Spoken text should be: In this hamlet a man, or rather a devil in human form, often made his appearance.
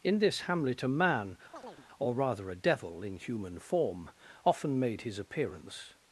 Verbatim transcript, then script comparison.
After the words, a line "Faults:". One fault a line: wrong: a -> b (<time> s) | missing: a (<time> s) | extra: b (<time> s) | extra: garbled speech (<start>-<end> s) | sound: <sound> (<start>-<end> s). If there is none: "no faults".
In this hamlet a man, or rather a devil in human form, often made his appearance.
Faults:
sound: chirp (1.5-1.9 s)